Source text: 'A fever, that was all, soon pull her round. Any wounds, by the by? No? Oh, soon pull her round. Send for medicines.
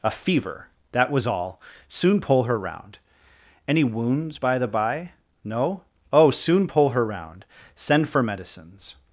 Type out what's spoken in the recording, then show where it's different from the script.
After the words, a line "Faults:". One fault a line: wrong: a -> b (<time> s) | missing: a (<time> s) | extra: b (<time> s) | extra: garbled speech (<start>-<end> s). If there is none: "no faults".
'A fever, that was all, soon pull her round. Any wounds, by the by? No? Oh, soon pull her round. Send for medicines.
Faults:
no faults